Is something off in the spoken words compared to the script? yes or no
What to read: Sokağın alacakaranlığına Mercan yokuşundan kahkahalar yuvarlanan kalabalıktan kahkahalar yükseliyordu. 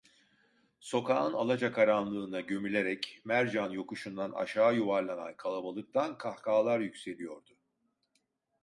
yes